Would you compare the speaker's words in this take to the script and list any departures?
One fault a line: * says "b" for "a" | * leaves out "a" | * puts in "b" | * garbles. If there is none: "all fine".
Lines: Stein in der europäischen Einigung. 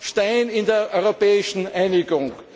all fine